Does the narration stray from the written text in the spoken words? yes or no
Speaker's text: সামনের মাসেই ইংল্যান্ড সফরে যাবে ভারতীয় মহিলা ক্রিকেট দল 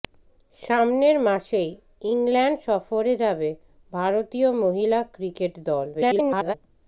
yes